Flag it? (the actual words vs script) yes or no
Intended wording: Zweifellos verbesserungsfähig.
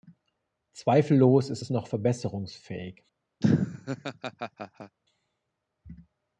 yes